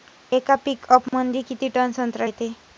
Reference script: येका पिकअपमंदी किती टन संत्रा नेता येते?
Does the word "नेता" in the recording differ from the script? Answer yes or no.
yes